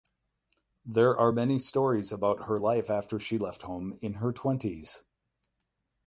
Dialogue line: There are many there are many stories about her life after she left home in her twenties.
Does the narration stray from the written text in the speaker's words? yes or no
yes